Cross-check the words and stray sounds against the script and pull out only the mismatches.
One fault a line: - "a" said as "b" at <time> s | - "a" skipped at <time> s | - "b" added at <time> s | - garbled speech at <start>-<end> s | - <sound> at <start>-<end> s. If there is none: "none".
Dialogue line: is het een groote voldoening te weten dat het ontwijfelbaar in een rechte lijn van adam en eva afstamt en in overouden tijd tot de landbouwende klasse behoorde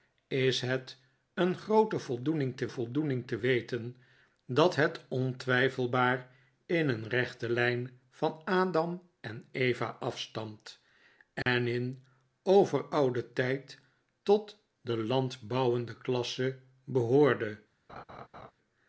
- "voldoening te" added at 2.7 s
- dropout at 11.4-11.5 s
- laugh at 17.9-18.5 s